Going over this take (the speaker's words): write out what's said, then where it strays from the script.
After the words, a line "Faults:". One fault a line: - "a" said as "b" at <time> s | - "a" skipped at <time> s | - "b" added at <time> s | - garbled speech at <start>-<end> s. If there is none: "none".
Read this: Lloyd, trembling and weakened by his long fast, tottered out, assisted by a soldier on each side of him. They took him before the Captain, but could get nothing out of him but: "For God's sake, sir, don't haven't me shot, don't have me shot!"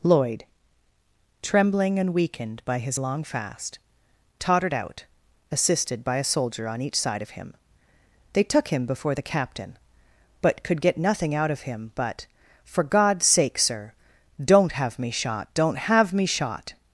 Lloyd, trembling and weakened by his long fast, tottered out, assisted by a soldier on each side of him. They took him before the Captain, but could get nothing out of him but: "For God's sake, sir, don't have me shot, don't have me shot!"
Faults:
- "haven't" said as "have" at 14.7 s